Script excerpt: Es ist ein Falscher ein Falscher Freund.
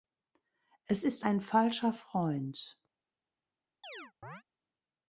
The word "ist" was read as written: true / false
true